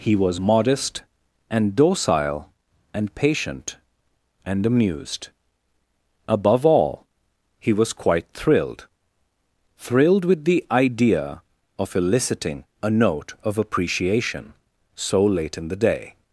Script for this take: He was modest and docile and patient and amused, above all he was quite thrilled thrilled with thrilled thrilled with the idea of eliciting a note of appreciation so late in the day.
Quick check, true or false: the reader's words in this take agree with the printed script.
false